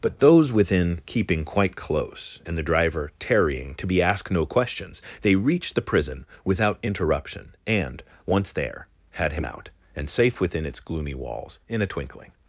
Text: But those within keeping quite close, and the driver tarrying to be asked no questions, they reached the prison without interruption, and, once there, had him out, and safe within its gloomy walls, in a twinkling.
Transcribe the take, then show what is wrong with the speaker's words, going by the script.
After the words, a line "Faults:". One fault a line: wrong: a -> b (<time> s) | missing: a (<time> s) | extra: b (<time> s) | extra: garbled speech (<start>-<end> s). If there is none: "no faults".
But those within keeping quite close, and the driver tarrying to be asked no questions, they reached the prison without interruption, and, once there, had him out, and safe within its gloomy walls, in a twinkling.
Faults:
no faults